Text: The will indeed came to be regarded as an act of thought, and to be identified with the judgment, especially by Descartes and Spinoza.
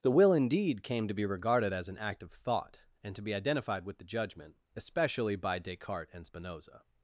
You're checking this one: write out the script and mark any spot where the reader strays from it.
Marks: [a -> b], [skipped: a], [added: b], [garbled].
The will indeed came to be regarded as an act of thought, and to be identified with the judgment, especially by Descartes and Spinoza.